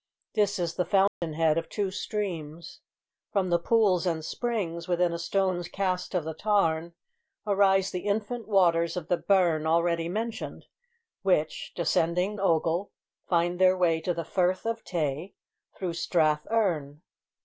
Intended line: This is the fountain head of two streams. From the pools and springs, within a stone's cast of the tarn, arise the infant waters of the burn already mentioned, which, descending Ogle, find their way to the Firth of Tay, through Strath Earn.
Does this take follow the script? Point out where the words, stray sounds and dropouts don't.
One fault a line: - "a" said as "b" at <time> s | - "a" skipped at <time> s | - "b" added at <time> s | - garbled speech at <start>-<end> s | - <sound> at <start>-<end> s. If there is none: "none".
- dropout at 1.1-1.2 s